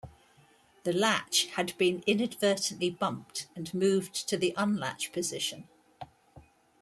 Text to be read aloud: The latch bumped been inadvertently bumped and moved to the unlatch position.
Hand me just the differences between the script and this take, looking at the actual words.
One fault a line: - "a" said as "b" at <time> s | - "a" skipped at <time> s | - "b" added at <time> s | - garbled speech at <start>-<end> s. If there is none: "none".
- "bumped" said as "had" at 1.5 s